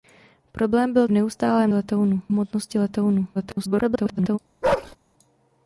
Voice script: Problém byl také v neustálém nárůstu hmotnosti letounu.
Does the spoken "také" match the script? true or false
false